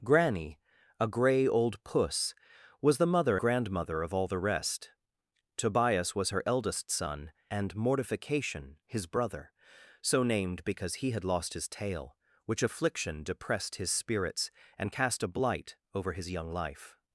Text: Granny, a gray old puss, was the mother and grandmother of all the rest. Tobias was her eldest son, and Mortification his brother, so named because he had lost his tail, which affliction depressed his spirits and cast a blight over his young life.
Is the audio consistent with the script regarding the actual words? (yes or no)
no